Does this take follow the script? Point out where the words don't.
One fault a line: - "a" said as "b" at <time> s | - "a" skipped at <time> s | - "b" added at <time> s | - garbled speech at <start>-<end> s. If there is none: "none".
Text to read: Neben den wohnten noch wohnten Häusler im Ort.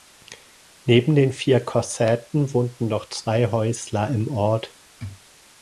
- "vier Kossäten" added at 1.3 s
- "wohnten" said as "zwei" at 3.1 s